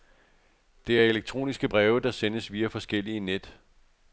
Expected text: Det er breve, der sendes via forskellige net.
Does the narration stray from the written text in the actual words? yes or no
yes